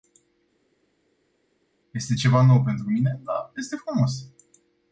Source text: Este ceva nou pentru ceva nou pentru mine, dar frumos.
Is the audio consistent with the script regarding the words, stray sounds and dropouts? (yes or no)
no